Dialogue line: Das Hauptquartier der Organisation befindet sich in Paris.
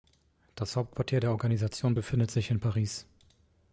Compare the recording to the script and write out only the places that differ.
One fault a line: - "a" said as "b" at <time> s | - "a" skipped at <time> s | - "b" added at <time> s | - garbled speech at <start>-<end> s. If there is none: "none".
none